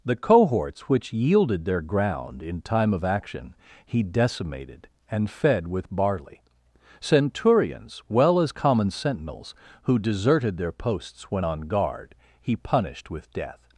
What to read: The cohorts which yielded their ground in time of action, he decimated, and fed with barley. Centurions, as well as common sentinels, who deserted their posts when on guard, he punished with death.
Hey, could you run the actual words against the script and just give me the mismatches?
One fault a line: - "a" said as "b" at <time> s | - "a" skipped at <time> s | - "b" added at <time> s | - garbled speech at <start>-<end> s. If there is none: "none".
- "as" skipped at 8.0 s